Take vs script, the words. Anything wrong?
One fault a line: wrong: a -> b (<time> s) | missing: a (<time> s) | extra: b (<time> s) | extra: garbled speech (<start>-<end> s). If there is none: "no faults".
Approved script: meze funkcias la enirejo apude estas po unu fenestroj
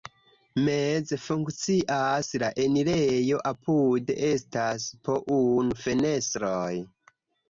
no faults